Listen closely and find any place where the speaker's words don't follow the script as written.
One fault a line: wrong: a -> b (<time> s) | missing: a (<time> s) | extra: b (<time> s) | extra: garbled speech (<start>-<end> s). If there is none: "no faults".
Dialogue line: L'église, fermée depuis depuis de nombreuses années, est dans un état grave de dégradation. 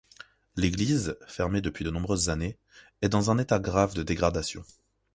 missing: depuis (1.9 s)